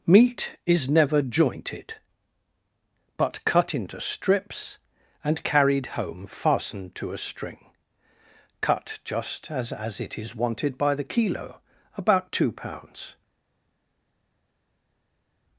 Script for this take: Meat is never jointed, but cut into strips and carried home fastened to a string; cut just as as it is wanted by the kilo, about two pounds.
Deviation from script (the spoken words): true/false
false